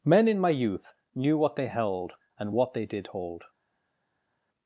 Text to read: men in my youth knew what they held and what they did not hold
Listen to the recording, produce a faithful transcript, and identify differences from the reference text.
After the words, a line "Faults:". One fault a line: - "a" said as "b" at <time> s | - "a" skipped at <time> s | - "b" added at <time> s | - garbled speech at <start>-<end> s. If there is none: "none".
men in my youth knew what they held and what they did hold
Faults:
- "not" skipped at 3.1 s